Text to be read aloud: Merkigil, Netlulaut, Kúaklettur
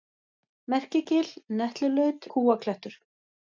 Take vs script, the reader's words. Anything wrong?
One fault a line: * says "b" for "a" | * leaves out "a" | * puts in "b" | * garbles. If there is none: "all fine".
all fine